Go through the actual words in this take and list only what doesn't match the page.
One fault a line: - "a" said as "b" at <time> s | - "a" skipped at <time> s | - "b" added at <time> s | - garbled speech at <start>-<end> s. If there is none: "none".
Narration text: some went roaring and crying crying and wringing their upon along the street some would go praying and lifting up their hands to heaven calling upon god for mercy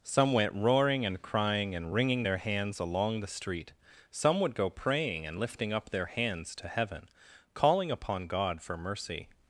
- "crying" skipped at 1.8 s
- "upon" said as "hands" at 2.4 s